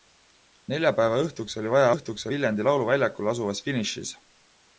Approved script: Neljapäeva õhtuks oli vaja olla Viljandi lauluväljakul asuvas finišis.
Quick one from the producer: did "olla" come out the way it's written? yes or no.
no